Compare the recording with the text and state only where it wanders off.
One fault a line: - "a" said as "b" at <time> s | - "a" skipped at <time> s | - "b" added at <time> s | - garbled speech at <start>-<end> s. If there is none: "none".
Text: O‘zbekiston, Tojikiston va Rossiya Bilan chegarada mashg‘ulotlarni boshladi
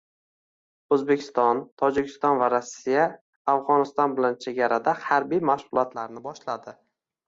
- "Afg‘oniston" added at 3.5 s
- "harbiy" added at 5.1 s